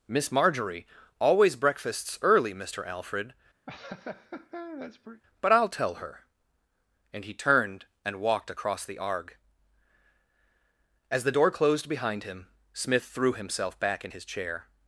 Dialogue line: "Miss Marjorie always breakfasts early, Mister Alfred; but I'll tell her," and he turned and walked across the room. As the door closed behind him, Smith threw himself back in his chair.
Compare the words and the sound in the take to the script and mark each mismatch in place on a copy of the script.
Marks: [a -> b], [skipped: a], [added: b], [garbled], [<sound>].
"Miss Marjorie always breakfasts early, Mister Alfred; [laugh] but I'll tell her," and he turned and walked across the [room. -> arg] As the door closed behind him, Smith threw himself back in his chair.